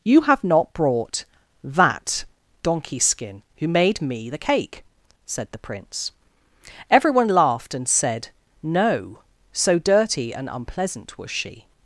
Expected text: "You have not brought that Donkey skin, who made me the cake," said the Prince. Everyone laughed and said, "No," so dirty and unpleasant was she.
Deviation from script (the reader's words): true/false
false